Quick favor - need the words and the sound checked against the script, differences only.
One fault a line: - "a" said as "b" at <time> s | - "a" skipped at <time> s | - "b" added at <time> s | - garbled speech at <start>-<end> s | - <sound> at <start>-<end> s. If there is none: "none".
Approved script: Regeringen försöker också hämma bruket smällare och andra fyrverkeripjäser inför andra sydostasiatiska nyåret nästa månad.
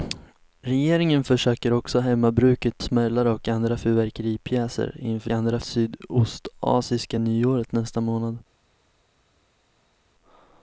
none